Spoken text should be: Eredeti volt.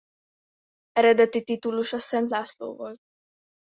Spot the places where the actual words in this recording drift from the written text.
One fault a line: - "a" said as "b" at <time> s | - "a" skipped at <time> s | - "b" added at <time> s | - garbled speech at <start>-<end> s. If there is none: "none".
- "titulusa Szent László" added at 1.4 s